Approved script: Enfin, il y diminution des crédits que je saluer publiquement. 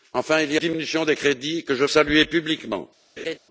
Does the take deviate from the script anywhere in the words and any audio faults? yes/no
yes